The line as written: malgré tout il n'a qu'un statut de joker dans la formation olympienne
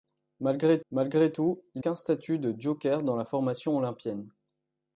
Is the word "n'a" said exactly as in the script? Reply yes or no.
no